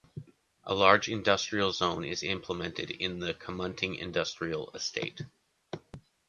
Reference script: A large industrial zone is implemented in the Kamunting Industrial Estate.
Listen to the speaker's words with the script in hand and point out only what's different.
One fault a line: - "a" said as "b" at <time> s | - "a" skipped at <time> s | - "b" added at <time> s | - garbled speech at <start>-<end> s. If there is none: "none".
none